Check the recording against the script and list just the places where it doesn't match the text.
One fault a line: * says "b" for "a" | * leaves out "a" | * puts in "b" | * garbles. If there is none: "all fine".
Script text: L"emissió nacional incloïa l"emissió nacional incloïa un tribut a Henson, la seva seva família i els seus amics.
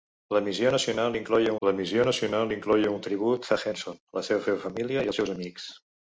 all fine